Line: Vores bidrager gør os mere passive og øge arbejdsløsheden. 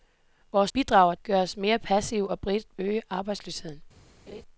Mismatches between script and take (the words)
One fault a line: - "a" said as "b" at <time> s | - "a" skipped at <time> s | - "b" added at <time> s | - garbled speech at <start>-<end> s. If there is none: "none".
none